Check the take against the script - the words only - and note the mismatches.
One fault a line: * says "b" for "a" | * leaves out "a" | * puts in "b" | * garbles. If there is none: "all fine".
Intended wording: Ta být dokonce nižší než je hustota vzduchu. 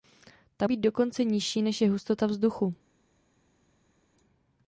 all fine